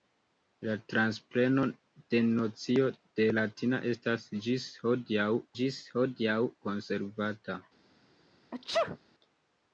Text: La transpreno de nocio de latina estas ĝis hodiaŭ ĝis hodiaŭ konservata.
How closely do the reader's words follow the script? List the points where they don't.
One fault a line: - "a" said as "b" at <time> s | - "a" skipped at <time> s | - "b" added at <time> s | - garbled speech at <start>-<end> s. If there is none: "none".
none